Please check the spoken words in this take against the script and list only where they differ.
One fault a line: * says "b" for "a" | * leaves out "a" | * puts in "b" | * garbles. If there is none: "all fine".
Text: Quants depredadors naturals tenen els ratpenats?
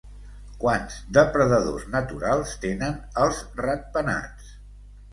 all fine